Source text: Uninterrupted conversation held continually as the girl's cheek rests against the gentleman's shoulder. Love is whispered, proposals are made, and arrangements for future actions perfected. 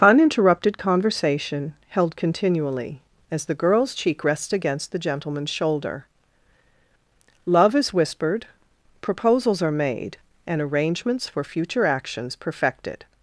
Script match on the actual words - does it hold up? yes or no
yes